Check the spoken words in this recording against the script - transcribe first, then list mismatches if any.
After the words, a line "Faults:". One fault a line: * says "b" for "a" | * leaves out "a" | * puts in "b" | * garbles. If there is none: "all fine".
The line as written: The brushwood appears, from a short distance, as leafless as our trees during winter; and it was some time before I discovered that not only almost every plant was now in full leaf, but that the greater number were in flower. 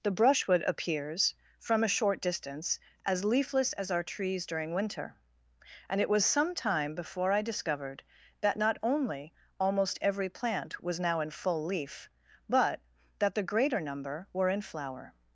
The brushwood appears, from a short distance, as leafless as our trees during winter; and it was some time before I discovered that not only almost every plant was now in full leaf, but that the greater number were in flower.
Faults:
all fine